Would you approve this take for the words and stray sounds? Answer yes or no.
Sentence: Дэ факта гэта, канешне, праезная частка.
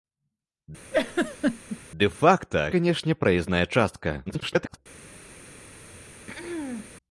no